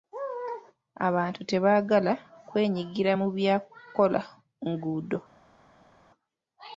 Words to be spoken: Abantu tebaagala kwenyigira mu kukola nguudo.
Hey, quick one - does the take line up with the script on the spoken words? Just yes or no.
no